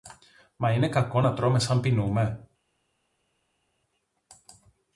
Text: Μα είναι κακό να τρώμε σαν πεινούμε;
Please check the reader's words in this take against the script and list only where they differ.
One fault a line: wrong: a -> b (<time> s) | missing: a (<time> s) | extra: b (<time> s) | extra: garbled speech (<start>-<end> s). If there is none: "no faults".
no faults